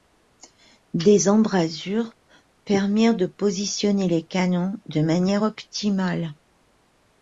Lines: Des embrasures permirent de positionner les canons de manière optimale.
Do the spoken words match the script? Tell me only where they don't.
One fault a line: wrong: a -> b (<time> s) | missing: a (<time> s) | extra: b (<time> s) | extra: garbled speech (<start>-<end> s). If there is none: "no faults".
no faults